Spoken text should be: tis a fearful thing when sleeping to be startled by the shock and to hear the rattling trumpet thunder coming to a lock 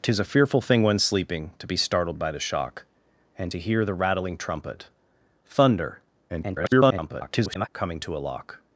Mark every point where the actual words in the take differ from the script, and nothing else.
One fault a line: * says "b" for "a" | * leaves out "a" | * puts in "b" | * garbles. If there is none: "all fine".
* garbles